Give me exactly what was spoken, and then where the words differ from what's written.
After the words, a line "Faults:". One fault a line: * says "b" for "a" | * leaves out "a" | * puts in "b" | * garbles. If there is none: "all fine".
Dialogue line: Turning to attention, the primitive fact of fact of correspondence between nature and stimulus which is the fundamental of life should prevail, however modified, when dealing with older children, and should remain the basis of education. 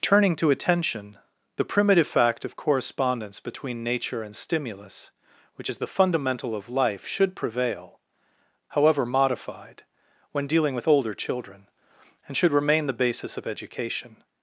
Turning to attention, the primitive fact of correspondence between nature and stimulus which is the fundamental of life should prevail, however modified, when dealing with older children, and should remain the basis of education.
Faults:
* leaves out "fact of"